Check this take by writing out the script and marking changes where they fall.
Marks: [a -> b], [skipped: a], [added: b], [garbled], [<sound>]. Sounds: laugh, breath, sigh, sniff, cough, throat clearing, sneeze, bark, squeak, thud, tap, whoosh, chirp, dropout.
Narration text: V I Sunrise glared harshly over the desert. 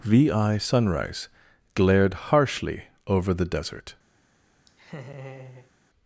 V I Sunrise glared harshly over the desert. [laugh]